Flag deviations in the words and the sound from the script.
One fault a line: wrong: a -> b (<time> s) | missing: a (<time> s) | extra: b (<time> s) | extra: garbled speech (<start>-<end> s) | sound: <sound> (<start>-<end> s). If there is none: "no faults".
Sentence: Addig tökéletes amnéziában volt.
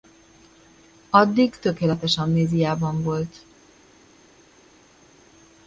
no faults